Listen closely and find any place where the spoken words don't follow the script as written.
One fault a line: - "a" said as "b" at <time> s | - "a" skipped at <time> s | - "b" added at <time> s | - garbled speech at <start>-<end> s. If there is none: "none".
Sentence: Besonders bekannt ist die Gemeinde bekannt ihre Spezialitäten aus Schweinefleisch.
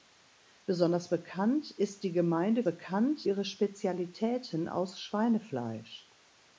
none